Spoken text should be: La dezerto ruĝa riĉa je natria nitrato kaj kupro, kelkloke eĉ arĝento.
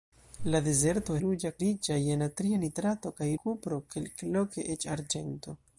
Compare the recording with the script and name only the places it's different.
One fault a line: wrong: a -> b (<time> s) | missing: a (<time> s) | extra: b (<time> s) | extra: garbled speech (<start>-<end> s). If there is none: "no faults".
no faults